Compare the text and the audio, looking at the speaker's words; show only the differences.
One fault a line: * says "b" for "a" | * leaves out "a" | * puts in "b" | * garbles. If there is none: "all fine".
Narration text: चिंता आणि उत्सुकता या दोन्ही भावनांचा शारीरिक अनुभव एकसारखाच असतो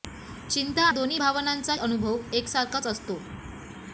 * leaves out "आणि उत्सुकता या"
* leaves out "शारीरिक"